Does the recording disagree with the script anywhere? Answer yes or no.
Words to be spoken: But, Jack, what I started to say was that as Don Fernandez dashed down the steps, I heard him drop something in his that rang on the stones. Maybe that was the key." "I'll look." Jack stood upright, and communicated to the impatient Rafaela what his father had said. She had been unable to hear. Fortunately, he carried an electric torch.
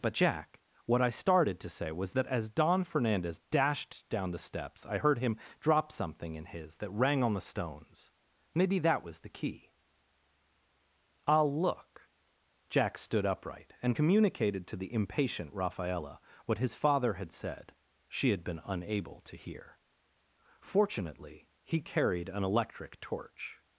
no